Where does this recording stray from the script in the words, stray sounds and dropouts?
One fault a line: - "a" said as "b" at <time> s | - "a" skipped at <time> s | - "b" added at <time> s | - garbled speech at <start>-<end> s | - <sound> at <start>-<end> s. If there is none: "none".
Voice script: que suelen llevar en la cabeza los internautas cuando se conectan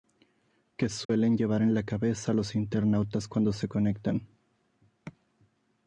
- dropout at 1.0-1.1 s